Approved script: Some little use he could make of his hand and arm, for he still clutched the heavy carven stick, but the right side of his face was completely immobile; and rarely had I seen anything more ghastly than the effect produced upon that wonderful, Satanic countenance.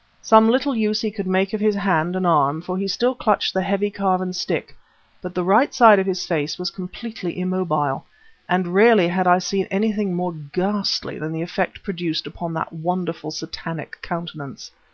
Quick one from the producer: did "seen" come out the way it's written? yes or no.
yes